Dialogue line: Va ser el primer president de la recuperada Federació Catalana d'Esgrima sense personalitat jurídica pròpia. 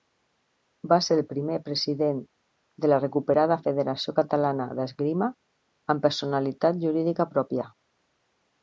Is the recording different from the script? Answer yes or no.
yes